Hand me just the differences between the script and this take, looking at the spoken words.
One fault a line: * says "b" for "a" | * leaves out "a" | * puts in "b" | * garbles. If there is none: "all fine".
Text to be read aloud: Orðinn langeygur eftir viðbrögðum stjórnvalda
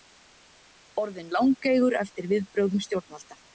all fine